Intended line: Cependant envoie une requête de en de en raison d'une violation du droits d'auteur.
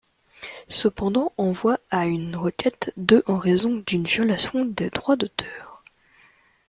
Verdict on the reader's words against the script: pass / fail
fail